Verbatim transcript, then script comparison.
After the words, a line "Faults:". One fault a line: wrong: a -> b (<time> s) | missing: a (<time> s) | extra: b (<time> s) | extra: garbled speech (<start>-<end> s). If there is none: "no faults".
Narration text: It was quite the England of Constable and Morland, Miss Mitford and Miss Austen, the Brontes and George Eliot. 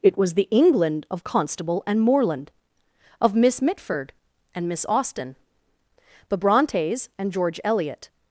It was the England of Constable and Morland, of Miss Mitford and Miss Austen, the Brontes and George Eliot.
Faults:
missing: quite (0.3 s)
extra: of (3.2 s)